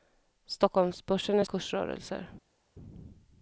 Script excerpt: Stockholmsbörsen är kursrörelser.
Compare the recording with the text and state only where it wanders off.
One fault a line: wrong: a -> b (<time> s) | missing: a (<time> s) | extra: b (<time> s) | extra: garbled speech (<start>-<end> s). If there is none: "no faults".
no faults